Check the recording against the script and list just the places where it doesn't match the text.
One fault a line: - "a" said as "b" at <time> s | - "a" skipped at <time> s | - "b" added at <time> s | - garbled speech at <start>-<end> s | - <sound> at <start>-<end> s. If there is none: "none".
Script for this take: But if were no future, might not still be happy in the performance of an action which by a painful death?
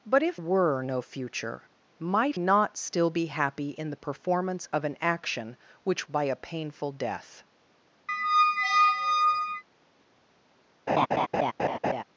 - squeak at 8.1-9.6 s
- laugh at 10.9-12.0 s